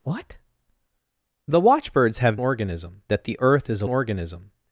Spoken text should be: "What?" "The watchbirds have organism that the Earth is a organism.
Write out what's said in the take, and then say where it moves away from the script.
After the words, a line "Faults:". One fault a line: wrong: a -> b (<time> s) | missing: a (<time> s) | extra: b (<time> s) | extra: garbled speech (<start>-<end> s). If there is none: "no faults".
"What?" "The watchbirds have organism that the Earth is a organism.
Faults:
no faults